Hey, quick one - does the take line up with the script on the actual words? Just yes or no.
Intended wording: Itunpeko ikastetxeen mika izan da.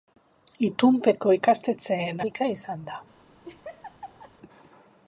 yes